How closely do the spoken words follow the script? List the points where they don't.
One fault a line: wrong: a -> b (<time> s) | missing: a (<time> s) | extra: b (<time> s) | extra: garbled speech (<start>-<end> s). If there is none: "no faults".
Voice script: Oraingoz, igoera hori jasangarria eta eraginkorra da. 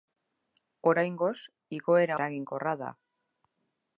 missing: hori jasangarria eta (2.2 s)